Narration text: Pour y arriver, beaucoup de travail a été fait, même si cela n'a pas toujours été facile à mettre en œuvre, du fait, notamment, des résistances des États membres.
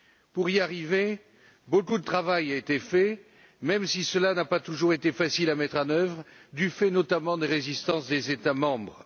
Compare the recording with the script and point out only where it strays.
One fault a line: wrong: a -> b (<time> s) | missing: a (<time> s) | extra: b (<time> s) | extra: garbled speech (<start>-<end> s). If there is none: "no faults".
no faults